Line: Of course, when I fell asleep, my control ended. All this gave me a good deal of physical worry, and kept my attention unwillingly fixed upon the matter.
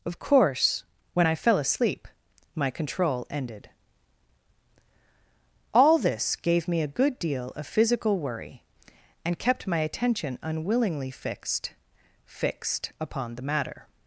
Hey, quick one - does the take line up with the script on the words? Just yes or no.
no